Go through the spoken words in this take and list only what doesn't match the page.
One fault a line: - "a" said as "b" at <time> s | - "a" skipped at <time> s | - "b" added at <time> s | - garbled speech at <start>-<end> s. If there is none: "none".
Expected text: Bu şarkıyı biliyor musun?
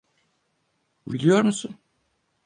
- "şarkıyı" skipped at 1.1 s